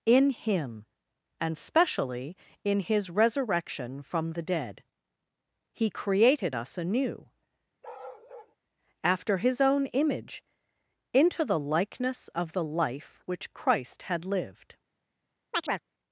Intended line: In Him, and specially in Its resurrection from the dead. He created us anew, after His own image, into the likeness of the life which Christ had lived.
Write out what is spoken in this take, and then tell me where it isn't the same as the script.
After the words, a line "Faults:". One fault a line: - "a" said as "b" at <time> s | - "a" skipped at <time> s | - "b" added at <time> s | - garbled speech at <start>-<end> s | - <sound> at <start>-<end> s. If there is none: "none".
In Him, and specially in His resurrection from the dead. He created us anew, after His own image, into the likeness of the life which Christ had lived.
Faults:
- "Its" said as "His" at 2.8 s
- bark at 7.8-8.6 s
- chirp at 15.5-15.8 s